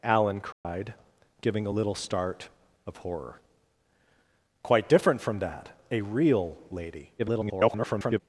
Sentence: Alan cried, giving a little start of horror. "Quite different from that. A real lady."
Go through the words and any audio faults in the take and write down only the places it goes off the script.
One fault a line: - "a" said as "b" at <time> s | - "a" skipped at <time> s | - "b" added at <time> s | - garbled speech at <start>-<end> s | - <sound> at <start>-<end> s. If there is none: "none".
- dropout at 0.5-0.6 s
- garbled speech at 7.2-8.2 s